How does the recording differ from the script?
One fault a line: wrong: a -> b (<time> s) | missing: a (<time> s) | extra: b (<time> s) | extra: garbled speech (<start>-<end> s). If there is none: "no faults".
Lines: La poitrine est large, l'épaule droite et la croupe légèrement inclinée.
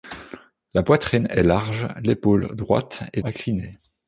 missing: la croupe légèrement (3.2 s)